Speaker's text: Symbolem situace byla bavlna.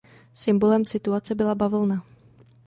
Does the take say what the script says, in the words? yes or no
yes